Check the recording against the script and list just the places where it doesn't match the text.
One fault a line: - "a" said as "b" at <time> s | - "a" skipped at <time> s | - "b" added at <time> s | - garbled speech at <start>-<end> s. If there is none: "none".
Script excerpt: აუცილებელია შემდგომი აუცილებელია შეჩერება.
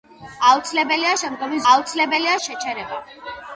none